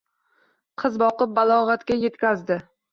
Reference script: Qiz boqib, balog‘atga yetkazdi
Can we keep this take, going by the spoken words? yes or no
yes